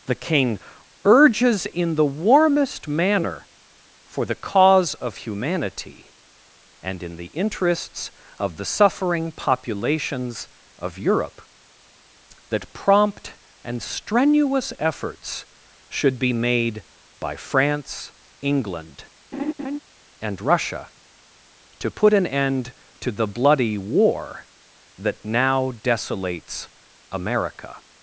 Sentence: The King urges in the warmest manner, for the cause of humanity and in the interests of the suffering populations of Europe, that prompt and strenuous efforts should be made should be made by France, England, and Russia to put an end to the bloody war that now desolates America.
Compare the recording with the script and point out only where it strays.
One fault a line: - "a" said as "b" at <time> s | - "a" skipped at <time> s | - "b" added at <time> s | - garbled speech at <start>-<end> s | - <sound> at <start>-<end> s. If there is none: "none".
- "should be made" skipped at 16.8 s
- laugh at 19.3-19.8 s